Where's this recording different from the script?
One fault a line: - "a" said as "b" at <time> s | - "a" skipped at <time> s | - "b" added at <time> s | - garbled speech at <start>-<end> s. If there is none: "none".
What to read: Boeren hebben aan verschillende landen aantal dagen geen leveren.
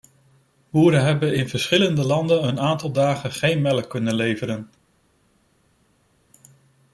- "aan" said as "in" at 1.4 s
- "een" added at 2.5 s
- "melk kunnen" added at 3.6 s